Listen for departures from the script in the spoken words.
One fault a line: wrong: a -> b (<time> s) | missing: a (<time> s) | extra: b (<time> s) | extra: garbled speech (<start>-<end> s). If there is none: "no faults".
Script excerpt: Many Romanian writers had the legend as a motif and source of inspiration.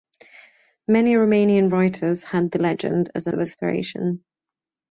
missing: motif and source (3.3 s)